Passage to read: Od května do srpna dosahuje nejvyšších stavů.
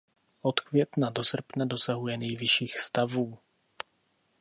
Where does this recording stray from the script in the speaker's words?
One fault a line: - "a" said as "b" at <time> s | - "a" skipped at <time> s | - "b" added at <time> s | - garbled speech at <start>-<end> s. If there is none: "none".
none